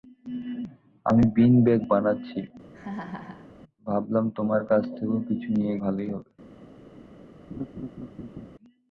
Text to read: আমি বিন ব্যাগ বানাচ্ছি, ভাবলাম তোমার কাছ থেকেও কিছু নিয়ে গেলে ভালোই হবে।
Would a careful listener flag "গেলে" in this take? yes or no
yes